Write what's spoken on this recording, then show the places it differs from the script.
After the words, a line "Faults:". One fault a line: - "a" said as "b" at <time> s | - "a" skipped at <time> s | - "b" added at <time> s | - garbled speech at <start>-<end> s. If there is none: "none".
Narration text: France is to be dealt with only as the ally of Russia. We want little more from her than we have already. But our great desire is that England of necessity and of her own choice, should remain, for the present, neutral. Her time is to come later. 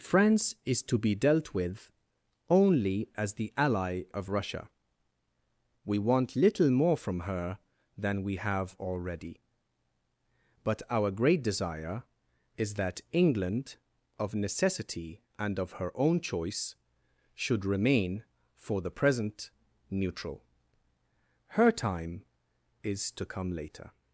France is to be dealt with only as the ally of Russia. We want little more from her than we have already. But our great desire is that England of necessity and of her own choice, should remain, for the present, neutral. Her time is to come later.
Faults:
none